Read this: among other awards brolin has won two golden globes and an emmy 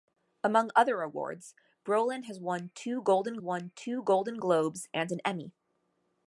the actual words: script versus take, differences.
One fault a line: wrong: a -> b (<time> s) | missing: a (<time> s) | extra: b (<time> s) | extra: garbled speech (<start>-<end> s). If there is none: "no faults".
extra: won two golden (3.4 s)